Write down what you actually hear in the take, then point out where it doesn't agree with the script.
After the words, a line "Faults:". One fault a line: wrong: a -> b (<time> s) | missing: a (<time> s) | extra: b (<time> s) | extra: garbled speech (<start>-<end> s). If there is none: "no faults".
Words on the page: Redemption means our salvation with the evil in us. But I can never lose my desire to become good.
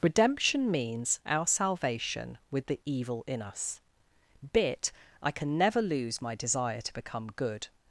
Redemption means our salvation with the evil in us. Bit I can never lose my desire to become good.
Faults:
wrong: But -> Bit (4.5 s)